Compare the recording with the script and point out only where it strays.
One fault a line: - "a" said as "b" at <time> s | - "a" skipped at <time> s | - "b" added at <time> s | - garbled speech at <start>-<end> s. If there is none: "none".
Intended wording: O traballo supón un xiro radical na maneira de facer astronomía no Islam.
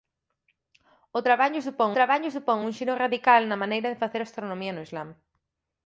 - "traballo supón" added at 2.0 s